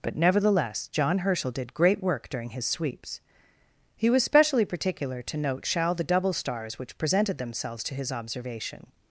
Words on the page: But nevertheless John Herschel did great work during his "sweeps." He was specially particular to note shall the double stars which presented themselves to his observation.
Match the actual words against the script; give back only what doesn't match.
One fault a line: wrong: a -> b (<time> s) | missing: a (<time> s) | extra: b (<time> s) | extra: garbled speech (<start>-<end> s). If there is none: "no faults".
no faults